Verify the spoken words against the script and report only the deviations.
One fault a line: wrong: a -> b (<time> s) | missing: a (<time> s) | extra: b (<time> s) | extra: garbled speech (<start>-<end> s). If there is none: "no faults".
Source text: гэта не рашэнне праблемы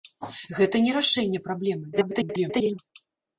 extra: garbled speech (1.9-2.8 s)